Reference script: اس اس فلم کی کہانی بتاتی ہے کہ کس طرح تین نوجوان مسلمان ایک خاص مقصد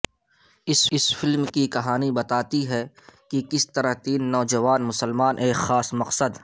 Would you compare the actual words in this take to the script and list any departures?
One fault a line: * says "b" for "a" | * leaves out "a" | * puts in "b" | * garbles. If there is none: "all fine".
all fine